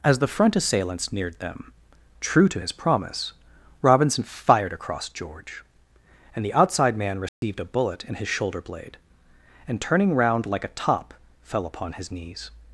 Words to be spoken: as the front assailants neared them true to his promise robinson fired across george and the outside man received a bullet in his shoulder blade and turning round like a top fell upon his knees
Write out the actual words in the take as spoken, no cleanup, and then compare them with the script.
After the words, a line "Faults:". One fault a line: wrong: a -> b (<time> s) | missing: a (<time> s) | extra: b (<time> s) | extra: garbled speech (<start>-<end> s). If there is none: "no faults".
as the front assailants neared them true to his promise robinson fired across george and the outside man received a bullet in his shoulder blade and turning round like a top fell upon his knees
Faults:
no faults